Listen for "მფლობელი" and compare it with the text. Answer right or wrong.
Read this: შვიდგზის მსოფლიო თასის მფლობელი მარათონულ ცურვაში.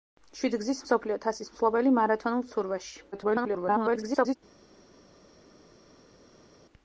right